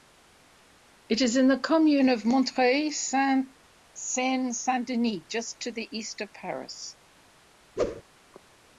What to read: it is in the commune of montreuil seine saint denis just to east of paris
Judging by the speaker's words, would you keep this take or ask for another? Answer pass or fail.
fail